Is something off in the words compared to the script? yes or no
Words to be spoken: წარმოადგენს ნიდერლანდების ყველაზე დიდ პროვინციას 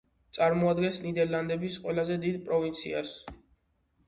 no